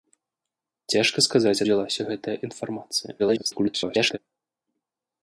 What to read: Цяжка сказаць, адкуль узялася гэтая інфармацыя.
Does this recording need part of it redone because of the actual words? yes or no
yes